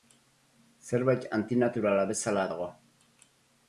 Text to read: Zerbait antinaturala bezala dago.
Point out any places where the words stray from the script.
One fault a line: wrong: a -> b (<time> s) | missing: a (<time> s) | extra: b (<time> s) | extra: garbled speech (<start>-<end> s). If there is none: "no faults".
no faults